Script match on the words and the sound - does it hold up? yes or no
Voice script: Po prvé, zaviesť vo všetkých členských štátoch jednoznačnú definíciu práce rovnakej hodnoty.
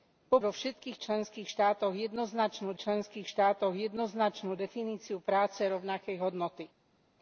no